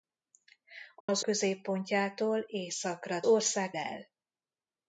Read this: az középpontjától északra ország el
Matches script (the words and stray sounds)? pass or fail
fail